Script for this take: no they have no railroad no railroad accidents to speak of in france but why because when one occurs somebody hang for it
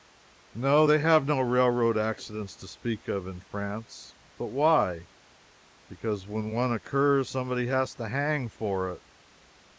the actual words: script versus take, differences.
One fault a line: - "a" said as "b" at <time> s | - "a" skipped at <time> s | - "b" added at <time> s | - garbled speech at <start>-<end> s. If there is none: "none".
- "no railroad" skipped at 2.0 s
- "has to" added at 7.6 s